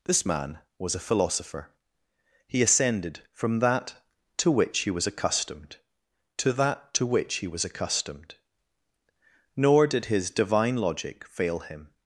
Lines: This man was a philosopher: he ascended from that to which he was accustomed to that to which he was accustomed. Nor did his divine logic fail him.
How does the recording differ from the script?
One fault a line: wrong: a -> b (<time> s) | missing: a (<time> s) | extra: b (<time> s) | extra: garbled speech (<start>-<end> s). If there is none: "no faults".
no faults